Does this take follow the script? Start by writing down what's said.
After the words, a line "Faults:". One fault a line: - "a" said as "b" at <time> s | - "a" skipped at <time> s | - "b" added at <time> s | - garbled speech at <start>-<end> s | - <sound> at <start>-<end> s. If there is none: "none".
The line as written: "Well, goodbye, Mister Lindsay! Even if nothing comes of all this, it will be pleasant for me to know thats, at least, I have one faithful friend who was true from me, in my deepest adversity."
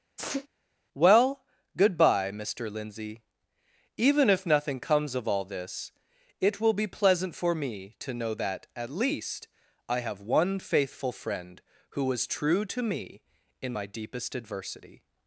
"Well, goodbye, Mister Lindsay! Even if nothing comes of all this, it will be pleasant for me to know that, at least, I have one faithful friend who was true to me, in my deepest adversity."
Faults:
- sneeze at 0.2-0.5 s
- "thats" said as "that" at 8.3 s
- "from" said as "to" at 12.6 s